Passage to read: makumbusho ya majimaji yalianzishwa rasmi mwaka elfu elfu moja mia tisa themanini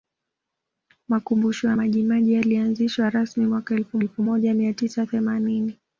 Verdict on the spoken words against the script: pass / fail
pass